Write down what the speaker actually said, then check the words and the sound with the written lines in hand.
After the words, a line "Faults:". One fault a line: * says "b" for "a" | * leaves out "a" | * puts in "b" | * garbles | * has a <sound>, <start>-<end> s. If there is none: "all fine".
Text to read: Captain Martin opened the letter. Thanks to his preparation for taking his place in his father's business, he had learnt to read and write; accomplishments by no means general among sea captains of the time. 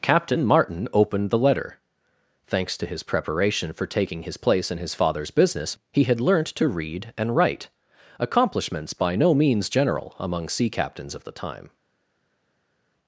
Captain Martin opened the letter. Thanks to his preparation for taking his place in his father's business, he had learnt to read and write; accomplishments by no means general among sea captains of the time.
Faults:
all fine